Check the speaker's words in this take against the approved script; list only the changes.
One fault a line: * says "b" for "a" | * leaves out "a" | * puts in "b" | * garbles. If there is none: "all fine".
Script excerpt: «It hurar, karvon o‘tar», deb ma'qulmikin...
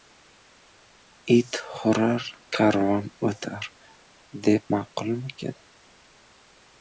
all fine